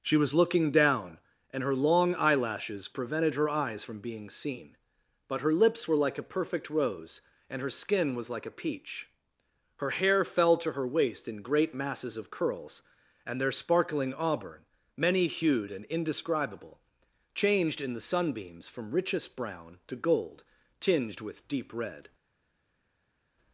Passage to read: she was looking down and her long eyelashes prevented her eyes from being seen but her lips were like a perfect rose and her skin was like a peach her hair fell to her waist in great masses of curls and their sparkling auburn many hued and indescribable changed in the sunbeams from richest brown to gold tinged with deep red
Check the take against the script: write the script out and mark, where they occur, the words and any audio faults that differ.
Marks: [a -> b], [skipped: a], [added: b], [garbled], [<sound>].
she was looking down and her long eyelashes prevented her eyes from being seen but her lips were like a perfect rose and her skin was like a peach her hair fell to her waist in great masses of curls and their sparkling auburn many hued and indescribable changed in the sunbeams from richest brown to gold tinged with deep red